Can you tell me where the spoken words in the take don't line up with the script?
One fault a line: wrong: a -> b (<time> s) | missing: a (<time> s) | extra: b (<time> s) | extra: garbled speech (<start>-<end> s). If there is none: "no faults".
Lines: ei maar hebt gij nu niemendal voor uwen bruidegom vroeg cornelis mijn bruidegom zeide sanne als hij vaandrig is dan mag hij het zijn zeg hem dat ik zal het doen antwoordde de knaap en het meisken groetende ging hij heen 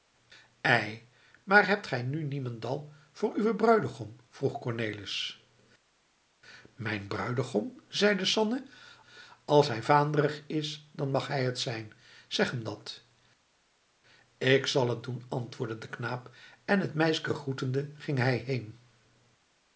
no faults